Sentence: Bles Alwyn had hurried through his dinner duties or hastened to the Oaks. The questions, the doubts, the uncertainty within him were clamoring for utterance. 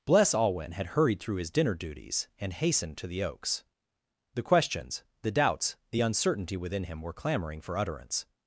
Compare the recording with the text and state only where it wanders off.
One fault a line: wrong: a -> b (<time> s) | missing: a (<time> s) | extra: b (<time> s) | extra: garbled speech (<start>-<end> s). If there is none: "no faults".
wrong: or -> and (2.4 s)